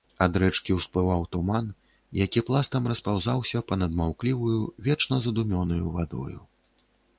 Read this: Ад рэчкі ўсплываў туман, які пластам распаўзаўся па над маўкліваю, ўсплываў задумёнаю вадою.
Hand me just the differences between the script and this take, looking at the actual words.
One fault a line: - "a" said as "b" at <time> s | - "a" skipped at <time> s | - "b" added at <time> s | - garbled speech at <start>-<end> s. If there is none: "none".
- "ўсплываў" said as "вечна" at 4.9 s